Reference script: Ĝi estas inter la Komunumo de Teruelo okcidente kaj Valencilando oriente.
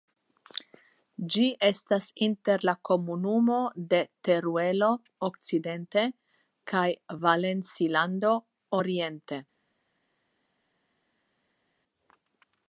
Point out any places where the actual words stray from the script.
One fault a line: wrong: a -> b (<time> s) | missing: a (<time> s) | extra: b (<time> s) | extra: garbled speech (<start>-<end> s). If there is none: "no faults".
no faults